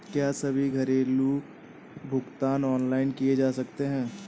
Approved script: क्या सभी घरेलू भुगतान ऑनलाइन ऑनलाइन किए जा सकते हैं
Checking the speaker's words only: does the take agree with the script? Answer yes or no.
no